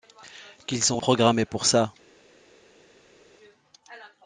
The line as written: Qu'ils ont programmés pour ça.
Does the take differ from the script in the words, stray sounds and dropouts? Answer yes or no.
no